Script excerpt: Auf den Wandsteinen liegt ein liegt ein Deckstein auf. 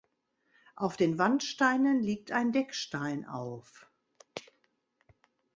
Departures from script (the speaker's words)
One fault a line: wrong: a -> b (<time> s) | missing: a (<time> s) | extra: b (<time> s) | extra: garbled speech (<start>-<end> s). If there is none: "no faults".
missing: liegt ein (2.5 s)